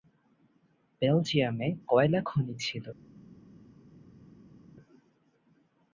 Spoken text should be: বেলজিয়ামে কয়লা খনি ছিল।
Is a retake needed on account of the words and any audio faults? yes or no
no